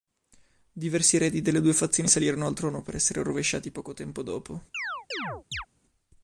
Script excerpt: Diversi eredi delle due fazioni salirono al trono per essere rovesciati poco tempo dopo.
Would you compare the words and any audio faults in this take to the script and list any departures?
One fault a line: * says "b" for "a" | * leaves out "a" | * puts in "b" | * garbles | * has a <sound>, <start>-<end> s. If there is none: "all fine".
* has a chirp, 4.7-5.7 s